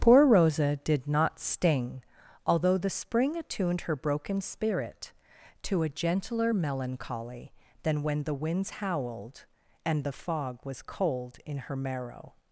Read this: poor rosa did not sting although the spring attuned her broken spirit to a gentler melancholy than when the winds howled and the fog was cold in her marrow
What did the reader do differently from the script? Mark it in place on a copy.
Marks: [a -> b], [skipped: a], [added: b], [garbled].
poor rosa did not sting although the spring attuned her broken spirit to a gentler melancholy than when the winds howled and the fog was cold in her marrow